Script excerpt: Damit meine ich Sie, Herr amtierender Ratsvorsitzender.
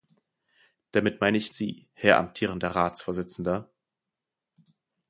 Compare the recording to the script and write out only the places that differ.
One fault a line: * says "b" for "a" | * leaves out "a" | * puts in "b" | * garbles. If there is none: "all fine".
all fine